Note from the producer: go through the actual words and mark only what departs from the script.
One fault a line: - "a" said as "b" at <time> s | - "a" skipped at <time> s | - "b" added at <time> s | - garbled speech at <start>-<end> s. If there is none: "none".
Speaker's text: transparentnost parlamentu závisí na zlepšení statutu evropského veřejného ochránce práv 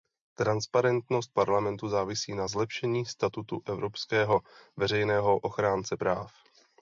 none